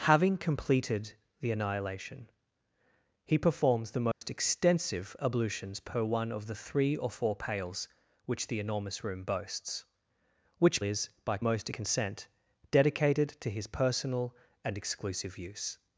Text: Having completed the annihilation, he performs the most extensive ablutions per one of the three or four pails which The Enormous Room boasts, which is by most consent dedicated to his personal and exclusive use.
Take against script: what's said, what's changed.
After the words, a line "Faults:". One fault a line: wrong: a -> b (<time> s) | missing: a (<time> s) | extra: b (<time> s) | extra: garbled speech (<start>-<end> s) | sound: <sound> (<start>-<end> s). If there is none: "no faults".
Having completed the annihilation, he performs the most extensive ablutions per one of the three or four pails which The Enormous Room boasts, which is by most consent dedicated to his personal and exclusive use.
Faults:
sound: dropout (4.1-4.2 s)